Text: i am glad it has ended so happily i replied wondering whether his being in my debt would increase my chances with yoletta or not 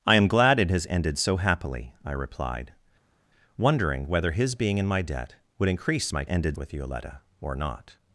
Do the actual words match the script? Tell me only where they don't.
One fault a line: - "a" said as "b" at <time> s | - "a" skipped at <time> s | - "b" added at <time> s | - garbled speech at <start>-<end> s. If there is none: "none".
- "chances" said as "ended" at 6.3 s